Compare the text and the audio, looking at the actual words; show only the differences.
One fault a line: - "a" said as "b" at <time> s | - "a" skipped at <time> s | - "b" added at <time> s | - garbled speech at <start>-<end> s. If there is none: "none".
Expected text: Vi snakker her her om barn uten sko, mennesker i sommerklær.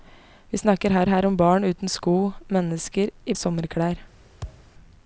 none